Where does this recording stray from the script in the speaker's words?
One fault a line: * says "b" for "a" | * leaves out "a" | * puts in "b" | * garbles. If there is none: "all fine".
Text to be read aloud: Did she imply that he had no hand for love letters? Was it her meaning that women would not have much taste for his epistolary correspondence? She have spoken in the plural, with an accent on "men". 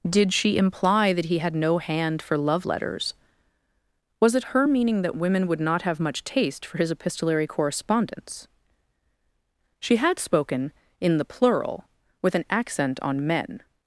* says "had" for "have"